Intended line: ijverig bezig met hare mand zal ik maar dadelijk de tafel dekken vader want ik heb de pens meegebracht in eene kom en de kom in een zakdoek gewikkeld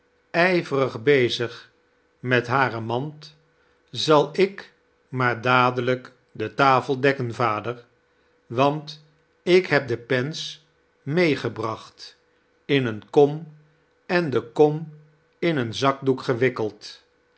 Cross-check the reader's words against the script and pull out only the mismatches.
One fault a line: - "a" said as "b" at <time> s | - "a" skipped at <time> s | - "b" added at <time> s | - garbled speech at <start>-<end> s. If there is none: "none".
none